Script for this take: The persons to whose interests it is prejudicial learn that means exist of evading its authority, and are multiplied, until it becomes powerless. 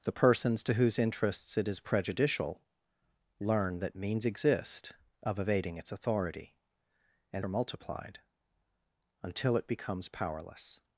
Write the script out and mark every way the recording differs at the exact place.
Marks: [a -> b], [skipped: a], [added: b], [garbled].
The persons to whose interests it is prejudicial learn that means exist of evading its authority, and are multiplied, until it becomes powerless.